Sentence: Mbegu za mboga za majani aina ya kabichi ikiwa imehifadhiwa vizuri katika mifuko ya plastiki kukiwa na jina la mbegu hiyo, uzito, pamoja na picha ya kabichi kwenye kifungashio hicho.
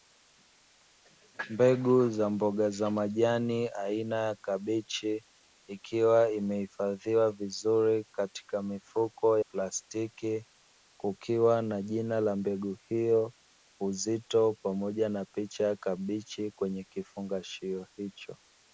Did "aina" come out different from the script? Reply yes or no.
no